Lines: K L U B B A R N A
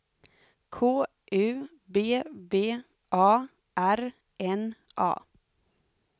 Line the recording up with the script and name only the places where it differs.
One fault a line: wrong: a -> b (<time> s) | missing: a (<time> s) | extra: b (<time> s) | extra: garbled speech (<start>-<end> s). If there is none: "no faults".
missing: L (1.1 s)